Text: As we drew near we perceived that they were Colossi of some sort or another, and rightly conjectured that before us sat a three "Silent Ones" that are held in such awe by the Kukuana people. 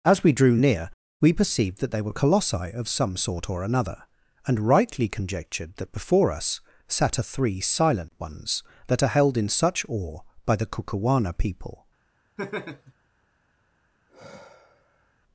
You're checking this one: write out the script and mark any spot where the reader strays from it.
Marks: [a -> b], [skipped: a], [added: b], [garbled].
As we drew near we perceived that they were Colossi of some sort or another, and rightly conjectured that before us sat a three "Silent Ones" that are held in such awe by the Kukuana people.